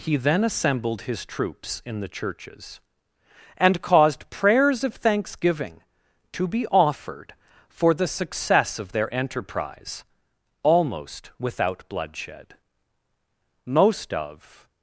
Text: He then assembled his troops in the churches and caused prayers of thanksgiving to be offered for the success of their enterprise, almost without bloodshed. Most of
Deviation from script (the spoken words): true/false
false